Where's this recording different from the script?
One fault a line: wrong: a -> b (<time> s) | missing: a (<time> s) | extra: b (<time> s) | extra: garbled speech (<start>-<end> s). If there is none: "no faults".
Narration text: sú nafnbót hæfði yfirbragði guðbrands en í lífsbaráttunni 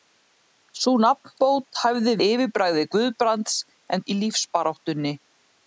no faults